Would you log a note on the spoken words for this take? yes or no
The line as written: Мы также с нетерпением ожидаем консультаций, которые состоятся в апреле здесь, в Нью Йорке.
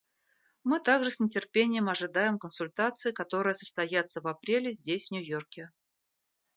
no